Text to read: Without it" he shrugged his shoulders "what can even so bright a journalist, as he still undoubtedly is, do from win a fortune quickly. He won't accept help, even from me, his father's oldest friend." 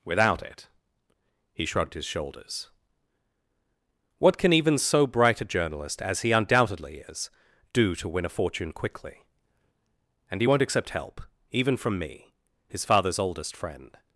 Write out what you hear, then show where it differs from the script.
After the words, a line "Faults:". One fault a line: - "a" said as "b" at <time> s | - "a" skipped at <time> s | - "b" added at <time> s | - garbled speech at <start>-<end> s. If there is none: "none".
Without it" he shrugged his shoulders "what can even so bright a journalist, as he undoubtedly is, do to win a fortune quickly. And he won't accept help, even from me, his father's oldest friend."
Faults:
- "still" skipped at 6.3 s
- "from" said as "to" at 8.0 s
- "And" added at 10.3 s